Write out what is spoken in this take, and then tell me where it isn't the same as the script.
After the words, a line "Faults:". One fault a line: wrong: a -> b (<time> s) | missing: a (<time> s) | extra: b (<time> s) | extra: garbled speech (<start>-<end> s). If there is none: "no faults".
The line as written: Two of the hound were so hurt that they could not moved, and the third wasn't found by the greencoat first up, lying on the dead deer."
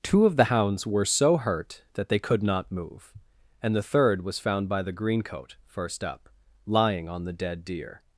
Two of the hounds were so hurt that they could not move, and the third was found by the greencoat first up, lying on the dead deer."
Faults:
wrong: hound -> hounds (0.4 s)
wrong: moved -> move (2.7 s)
wrong: wasn't -> was (4.2 s)